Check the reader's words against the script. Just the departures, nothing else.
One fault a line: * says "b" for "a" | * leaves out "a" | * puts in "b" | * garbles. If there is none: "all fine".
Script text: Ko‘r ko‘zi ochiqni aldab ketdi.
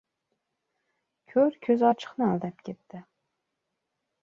all fine